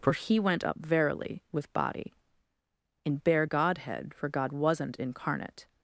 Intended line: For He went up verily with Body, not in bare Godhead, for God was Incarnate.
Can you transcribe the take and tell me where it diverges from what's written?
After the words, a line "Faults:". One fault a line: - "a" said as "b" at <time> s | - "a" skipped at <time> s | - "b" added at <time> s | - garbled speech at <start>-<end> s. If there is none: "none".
For He went up verily with Body, in bare Godhead, for God wasn't Incarnate.
Faults:
- "not" skipped at 2.1 s
- "was" said as "wasn't" at 4.5 s